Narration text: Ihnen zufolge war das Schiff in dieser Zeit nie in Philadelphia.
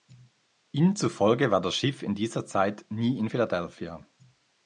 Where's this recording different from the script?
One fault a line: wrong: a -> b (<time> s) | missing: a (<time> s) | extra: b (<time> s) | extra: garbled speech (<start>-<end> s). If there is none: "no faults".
no faults